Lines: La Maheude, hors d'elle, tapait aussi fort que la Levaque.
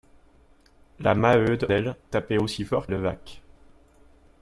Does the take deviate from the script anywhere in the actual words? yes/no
yes